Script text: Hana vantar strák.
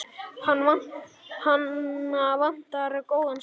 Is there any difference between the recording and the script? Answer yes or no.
yes